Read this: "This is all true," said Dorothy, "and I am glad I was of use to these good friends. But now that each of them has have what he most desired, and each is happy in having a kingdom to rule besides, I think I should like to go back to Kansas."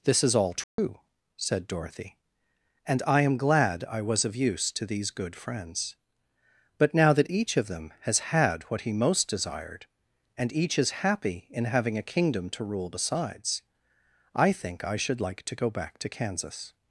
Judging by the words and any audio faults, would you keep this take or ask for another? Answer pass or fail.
fail